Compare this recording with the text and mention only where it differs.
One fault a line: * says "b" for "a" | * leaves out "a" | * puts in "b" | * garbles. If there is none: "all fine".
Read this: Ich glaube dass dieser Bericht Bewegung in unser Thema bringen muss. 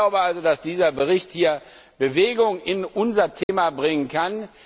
* puts in "also"
* says "kann" for "muss"